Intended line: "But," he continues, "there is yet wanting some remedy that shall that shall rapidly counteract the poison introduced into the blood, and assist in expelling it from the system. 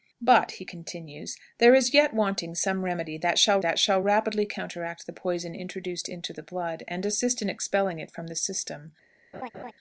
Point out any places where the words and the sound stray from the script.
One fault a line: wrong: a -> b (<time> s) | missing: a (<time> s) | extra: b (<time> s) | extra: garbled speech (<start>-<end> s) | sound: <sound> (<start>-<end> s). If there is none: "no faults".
sound: laugh (9.3-9.7 s)